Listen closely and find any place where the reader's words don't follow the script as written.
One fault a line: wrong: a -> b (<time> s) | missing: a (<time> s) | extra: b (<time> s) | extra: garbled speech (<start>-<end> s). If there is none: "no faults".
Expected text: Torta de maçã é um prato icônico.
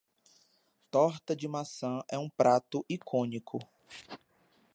no faults